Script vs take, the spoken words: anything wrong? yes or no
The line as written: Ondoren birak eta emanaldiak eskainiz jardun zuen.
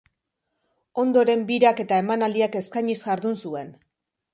no